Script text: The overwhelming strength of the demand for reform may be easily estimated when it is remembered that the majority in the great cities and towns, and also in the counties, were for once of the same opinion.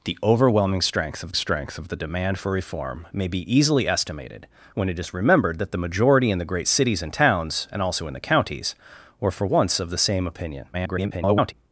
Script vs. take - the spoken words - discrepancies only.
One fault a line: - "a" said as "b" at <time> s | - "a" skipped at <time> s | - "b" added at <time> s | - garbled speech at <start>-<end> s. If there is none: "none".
- "strength of" added at 1.3 s
- garbled speech at 10.7-11.5 s